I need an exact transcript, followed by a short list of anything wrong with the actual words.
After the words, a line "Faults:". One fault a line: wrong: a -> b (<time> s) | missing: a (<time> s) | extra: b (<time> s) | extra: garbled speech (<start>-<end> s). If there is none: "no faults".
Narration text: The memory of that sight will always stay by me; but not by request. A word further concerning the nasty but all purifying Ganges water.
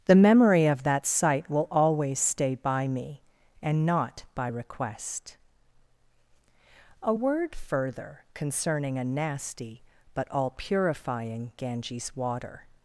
The memory of that sight will always stay by me; and not by request. A word further concerning a nasty but all purifying Ganges water.
Faults:
wrong: but -> and (3.6 s)
wrong: the -> a (9.0 s)